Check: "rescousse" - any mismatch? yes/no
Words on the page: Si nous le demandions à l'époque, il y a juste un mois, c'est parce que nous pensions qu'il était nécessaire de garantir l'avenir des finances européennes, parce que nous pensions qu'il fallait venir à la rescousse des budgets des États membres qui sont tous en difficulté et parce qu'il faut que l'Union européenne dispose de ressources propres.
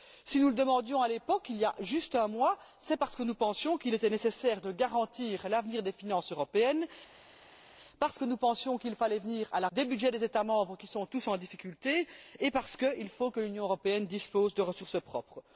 yes